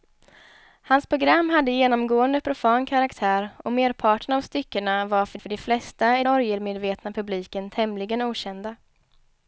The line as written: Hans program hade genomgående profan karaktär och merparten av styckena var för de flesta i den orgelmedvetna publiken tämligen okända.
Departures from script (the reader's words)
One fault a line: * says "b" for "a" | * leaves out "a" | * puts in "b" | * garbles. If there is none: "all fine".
* puts in "för"
* leaves out "den"